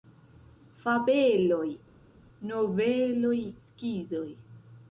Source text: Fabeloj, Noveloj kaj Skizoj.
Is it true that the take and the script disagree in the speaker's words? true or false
true